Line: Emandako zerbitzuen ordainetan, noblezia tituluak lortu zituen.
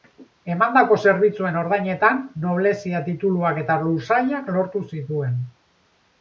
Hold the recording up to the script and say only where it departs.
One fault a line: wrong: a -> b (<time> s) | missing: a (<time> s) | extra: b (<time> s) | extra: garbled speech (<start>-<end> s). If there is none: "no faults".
extra: eta lursailak (3.7 s)